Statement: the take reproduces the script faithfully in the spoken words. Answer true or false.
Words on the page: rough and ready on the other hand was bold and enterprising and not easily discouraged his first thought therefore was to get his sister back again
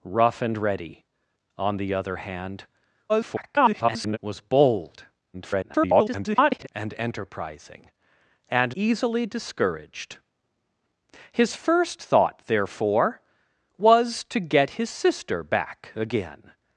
false